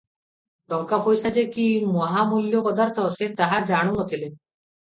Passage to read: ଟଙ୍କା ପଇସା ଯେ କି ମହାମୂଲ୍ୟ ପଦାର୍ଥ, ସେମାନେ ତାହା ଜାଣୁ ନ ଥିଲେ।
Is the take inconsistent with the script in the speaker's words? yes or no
yes